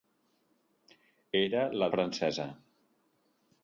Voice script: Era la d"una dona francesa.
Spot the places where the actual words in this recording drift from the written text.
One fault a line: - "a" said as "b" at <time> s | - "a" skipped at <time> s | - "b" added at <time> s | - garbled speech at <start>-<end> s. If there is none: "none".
- "d"una dona" skipped at 1.9 s